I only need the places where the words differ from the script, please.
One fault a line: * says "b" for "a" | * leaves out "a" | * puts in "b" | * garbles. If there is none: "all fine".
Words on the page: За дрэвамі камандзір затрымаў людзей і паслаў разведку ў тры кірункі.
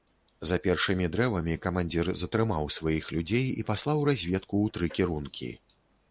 * puts in "першымі"
* puts in "сваіх"